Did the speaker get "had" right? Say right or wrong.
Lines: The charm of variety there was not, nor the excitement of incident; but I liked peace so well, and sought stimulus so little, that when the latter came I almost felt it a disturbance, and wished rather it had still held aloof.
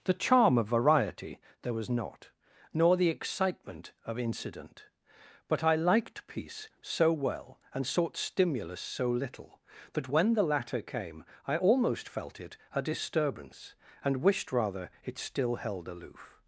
wrong